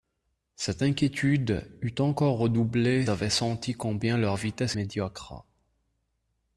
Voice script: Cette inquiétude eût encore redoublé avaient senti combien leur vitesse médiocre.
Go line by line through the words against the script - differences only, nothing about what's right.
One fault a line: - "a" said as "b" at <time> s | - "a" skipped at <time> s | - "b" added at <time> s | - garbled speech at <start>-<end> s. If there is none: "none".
none